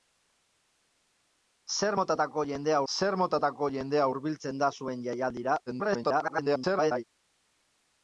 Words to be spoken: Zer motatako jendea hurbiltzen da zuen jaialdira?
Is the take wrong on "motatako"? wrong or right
right